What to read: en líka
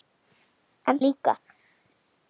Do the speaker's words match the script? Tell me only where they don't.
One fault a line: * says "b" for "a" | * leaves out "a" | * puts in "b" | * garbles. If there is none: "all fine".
all fine